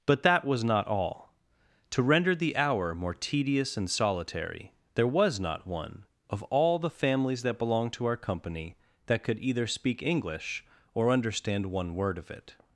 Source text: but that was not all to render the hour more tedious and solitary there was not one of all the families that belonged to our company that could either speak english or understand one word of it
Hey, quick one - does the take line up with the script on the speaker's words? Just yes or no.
yes